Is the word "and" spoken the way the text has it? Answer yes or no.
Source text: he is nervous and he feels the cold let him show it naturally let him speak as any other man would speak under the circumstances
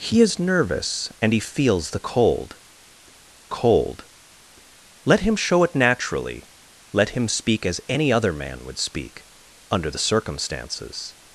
yes